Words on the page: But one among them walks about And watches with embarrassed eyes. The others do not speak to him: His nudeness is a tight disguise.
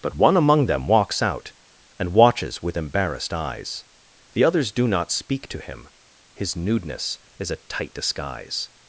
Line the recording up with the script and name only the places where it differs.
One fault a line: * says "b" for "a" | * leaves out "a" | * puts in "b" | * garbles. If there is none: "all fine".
* says "out" for "about"